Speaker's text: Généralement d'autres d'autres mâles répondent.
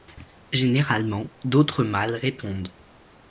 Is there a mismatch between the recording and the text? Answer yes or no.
yes